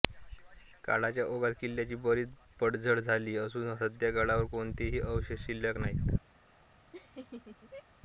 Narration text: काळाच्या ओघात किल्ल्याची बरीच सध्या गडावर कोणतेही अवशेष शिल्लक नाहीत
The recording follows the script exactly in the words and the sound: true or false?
false